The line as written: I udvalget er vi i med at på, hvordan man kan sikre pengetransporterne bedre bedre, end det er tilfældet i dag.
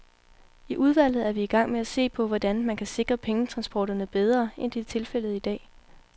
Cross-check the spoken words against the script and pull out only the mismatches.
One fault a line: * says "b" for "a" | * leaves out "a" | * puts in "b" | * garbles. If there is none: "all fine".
* puts in "gang"
* puts in "se"
* leaves out "bedre"